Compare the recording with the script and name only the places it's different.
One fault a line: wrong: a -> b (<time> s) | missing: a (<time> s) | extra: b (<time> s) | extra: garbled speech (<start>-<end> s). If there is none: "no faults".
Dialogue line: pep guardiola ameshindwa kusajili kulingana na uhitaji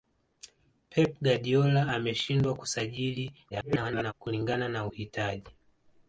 extra: garbled speech (3.5-4.1 s)